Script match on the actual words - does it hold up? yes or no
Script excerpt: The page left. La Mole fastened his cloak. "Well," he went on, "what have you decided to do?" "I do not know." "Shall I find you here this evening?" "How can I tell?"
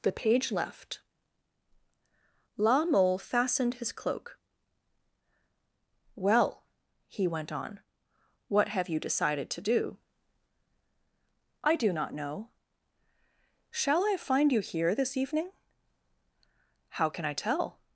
yes